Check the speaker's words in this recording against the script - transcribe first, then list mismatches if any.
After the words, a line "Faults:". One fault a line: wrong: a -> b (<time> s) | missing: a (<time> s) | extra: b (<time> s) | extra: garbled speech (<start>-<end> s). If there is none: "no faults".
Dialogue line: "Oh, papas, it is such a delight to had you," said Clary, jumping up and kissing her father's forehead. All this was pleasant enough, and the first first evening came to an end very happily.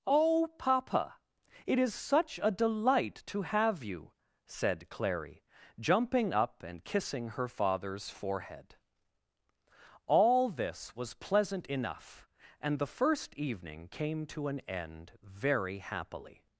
"Oh, papa, it is such a delight to have you," said Clary, jumping up and kissing her father's forehead. All this was pleasant enough, and the first evening came to an end very happily.
Faults:
wrong: papas -> papa (0.6 s)
wrong: had -> have (3.4 s)
missing: first (13.3 s)